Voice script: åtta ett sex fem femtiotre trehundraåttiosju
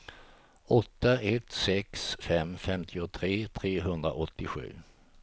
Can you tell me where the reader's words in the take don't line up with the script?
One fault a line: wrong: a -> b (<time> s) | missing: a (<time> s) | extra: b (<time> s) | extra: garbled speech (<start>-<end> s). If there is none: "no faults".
no faults